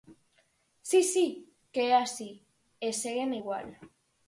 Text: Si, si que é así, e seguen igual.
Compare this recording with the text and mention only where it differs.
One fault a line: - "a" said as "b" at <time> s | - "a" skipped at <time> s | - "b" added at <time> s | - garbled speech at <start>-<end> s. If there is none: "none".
none